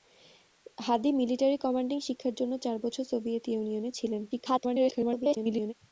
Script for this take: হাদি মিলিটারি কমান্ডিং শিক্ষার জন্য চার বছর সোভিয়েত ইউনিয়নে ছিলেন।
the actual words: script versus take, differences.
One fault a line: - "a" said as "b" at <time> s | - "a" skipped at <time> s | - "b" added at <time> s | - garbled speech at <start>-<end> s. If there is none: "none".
- garbled speech at 4.3-5.7 s